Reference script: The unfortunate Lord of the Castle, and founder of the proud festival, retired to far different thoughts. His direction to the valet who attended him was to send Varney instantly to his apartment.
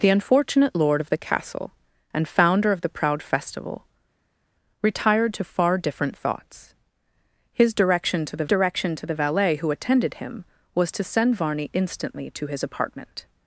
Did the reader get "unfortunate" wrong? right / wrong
right